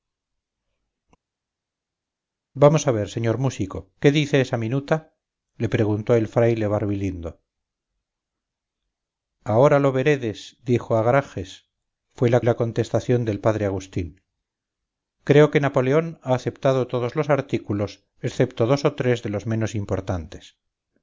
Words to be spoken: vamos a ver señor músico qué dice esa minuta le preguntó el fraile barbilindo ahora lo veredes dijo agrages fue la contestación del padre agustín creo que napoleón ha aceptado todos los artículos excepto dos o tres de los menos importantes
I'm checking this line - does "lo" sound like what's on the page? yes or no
yes